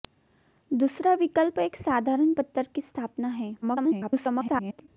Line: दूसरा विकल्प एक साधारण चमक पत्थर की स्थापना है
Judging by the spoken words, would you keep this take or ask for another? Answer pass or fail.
fail